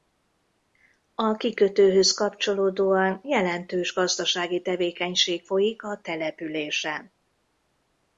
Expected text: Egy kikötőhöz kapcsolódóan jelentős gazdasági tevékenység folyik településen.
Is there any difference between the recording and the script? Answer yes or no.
yes